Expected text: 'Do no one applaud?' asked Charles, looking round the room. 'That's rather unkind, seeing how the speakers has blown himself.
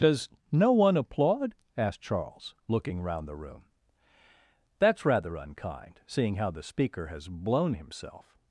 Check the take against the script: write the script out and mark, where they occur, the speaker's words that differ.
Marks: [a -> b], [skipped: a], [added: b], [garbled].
['Do -> Does] no one applaud?' asked Charles, looking round the room. 'That's rather unkind, seeing how the [speakers -> speaker] has blown himself.